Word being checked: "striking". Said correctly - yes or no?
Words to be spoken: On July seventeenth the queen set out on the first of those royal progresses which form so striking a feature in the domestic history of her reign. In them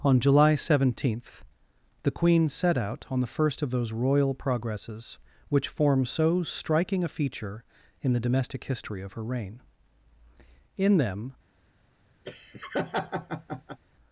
yes